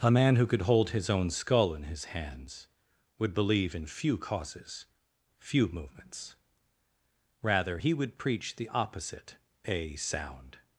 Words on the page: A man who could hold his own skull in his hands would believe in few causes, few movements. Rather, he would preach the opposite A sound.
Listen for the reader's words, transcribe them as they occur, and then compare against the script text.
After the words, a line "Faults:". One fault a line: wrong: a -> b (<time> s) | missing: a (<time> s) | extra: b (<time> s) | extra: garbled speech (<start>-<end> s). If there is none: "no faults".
A man who could hold his own skull in his hands would believe in few causes, few movements. Rather, he would preach the opposite A sound.
Faults:
no faults